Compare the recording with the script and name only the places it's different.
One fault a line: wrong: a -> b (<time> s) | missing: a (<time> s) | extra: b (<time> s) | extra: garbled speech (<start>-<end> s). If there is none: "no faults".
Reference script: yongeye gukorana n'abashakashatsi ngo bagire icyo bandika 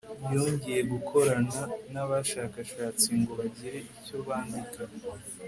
no faults